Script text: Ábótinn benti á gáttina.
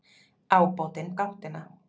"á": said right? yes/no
no